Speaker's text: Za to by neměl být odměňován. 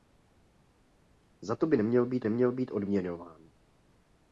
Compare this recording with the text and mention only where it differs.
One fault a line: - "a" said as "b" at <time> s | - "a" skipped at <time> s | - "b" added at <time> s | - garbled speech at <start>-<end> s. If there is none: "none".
- "neměl být" added at 2.2 s